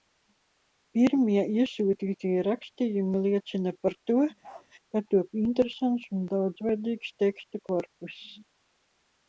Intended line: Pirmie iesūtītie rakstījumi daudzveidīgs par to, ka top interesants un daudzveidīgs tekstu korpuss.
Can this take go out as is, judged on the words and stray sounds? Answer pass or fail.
fail